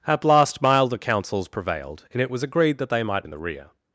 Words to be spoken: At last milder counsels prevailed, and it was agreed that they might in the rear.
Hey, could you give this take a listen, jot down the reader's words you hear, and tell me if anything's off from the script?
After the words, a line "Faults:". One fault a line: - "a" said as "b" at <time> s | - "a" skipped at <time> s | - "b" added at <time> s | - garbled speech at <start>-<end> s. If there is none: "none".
At last milder counsels prevailed, and it was agreed that they might in the rear.
Faults:
none